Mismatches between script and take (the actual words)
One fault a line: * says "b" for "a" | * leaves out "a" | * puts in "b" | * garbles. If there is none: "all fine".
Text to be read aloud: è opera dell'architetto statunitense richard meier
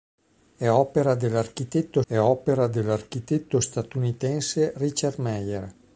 * puts in "è opera dell'architetto"